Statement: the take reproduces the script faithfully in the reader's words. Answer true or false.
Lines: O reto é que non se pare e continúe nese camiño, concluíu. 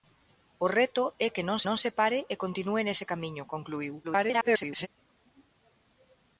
false